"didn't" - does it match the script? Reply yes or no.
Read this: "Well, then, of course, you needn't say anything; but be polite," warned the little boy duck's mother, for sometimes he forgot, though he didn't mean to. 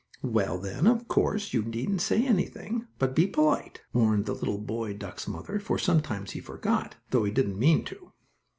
yes